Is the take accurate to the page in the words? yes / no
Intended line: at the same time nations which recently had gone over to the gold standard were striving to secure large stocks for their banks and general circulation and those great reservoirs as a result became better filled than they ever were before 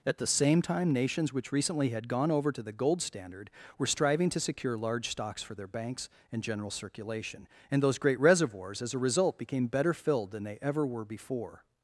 yes